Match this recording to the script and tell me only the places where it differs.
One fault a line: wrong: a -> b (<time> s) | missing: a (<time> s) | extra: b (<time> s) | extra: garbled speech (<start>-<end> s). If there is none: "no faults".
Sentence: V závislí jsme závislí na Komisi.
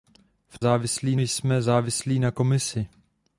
no faults